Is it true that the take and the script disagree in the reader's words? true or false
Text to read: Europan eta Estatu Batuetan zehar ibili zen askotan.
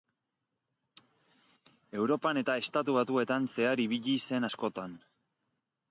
false